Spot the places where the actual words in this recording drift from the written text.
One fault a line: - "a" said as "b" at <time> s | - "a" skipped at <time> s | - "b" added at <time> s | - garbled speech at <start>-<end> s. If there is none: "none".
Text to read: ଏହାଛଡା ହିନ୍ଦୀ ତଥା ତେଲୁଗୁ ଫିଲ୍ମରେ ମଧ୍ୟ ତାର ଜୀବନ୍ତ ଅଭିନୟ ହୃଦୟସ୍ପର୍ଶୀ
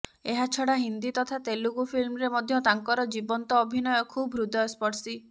- "ତାର" said as "ତାଙ୍କର" at 2.7 s
- "ଖୁବ୍" added at 4.1 s